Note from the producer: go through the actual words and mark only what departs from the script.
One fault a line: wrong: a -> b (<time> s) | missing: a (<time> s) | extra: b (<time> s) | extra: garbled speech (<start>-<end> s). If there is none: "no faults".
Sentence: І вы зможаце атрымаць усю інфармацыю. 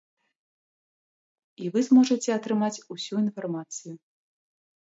no faults